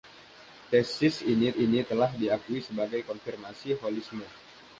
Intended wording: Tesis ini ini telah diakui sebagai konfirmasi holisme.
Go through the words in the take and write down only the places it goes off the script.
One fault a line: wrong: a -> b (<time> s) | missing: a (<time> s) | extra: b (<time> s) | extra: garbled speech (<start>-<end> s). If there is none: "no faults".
no faults